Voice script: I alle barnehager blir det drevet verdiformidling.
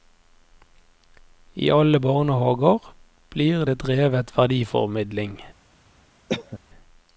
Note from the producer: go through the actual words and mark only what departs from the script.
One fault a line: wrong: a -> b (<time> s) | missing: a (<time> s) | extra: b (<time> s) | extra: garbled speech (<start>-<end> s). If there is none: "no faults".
no faults